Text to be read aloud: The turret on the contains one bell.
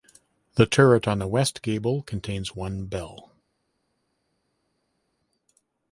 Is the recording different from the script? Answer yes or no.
yes